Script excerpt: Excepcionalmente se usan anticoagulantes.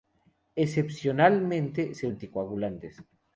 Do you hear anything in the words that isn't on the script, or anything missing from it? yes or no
yes